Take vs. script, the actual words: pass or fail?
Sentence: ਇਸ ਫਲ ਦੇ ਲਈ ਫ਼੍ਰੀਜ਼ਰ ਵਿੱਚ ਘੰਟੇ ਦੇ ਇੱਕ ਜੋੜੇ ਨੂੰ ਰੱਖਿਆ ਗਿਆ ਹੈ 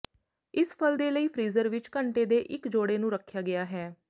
pass